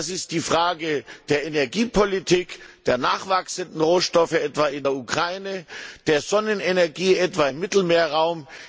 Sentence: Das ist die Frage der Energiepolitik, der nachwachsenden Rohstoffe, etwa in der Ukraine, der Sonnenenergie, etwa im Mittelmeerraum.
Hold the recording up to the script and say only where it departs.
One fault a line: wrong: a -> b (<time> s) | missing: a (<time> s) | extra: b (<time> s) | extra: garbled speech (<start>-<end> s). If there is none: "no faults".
no faults